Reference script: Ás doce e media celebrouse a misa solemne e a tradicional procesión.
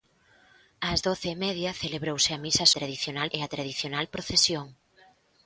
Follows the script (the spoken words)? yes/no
no